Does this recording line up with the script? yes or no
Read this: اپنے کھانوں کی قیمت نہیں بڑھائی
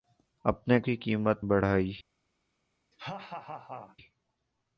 no